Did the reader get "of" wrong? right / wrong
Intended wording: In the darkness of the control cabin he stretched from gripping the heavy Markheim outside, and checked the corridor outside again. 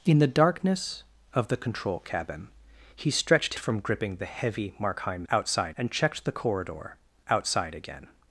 right